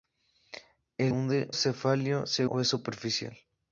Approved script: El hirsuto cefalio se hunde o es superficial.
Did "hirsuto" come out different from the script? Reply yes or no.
yes